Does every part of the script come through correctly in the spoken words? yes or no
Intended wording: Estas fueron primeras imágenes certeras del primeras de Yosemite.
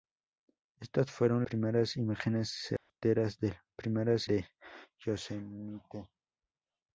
yes